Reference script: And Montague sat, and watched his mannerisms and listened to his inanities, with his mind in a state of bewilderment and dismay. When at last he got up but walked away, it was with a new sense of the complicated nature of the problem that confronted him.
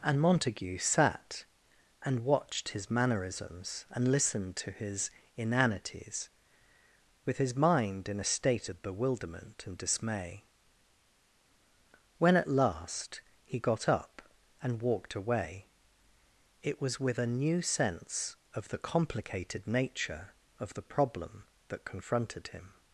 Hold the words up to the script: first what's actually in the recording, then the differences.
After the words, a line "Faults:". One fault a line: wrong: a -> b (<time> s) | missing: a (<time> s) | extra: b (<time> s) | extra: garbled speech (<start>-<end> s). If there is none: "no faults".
And Montague sat, and watched his mannerisms and listened to his inanities, with his mind in a state of bewilderment and dismay. When at last he got up and walked away, it was with a new sense of the complicated nature of the problem that confronted him.
Faults:
wrong: but -> and (14.6 s)